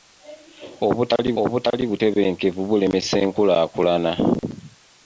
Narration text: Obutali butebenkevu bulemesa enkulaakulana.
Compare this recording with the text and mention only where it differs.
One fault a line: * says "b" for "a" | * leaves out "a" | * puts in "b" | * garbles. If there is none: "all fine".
* puts in "obutali"